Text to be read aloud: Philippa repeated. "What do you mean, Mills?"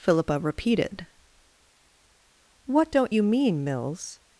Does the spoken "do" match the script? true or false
false